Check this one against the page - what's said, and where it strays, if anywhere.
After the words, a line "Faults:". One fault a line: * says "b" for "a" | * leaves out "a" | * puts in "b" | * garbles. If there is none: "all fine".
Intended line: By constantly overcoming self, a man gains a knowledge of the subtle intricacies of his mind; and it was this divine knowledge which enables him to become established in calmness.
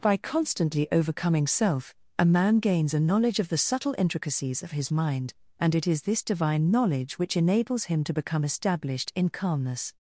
By constantly overcoming self, a man gains a knowledge of the subtle intricacies of his mind; and it is this divine knowledge which enables him to become established in calmness.
Faults:
* says "is" for "was"